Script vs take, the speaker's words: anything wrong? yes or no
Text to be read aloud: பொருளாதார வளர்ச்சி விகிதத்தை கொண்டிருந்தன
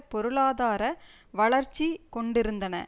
yes